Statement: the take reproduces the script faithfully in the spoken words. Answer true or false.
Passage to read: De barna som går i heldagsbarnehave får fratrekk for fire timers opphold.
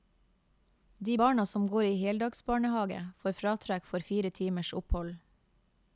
true